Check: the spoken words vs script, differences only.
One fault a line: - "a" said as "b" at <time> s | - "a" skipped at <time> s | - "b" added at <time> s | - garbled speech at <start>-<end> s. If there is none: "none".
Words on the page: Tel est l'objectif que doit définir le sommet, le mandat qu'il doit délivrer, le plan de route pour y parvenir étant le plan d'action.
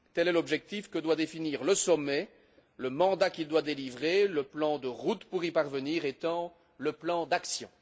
none